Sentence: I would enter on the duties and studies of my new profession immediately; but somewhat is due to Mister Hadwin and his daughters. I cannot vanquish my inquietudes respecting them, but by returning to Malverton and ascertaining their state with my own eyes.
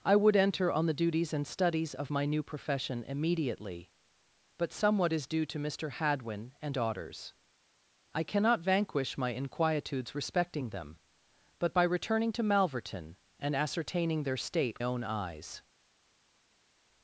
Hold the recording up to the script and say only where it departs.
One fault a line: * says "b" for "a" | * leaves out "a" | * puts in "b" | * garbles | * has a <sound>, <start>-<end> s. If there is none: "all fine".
* leaves out "his"
* leaves out "with my"